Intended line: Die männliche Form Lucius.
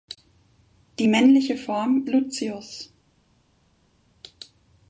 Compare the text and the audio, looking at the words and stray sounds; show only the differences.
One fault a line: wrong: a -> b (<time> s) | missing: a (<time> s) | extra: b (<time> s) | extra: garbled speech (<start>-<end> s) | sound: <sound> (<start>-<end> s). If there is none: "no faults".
no faults